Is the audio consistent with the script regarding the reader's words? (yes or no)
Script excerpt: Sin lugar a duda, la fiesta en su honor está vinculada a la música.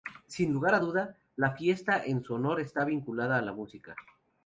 yes